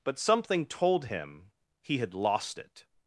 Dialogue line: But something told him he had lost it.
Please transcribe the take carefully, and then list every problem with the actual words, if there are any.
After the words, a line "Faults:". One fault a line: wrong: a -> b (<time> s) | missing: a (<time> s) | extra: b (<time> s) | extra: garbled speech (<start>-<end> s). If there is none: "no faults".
But something told him he had lost it.
Faults:
no faults